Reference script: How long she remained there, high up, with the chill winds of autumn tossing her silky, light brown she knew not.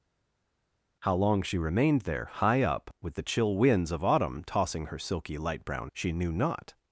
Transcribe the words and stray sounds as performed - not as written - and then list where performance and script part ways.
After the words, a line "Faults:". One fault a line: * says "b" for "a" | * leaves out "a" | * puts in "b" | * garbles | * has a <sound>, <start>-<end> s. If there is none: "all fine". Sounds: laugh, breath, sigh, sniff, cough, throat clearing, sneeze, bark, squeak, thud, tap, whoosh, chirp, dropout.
How long she remained there, high up, with the chill winds of autumn tossing her silky, light brown she knew not.
Faults:
all fine